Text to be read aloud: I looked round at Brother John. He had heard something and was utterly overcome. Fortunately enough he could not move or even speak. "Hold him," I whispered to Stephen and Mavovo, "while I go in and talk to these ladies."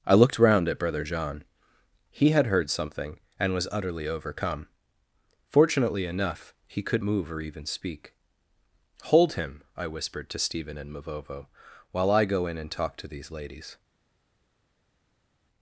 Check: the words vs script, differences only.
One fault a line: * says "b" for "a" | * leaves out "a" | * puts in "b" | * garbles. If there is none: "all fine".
* leaves out "not"